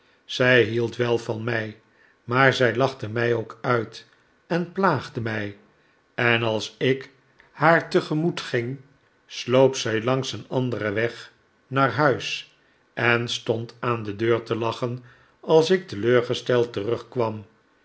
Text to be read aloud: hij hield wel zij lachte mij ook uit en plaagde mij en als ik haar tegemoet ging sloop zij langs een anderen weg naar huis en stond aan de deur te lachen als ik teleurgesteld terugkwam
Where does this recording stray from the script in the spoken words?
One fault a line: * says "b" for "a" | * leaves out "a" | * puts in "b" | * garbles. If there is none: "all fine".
* says "zij" for "hij"
* puts in "van mij maar"